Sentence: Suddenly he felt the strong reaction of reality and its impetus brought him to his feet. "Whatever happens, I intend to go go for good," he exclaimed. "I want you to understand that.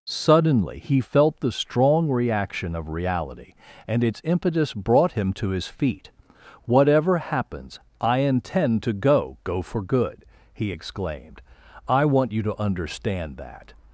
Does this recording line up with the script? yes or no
yes